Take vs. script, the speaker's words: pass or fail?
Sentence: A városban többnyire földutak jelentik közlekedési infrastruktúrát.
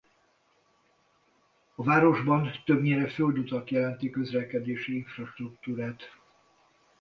pass